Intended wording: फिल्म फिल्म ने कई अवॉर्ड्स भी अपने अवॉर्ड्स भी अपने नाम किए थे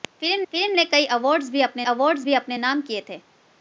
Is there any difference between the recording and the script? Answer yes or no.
no